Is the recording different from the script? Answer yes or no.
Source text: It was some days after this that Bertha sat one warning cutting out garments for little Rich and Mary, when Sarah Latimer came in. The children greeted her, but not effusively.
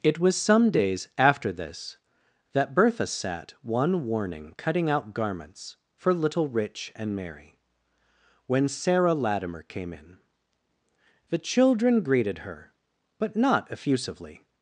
no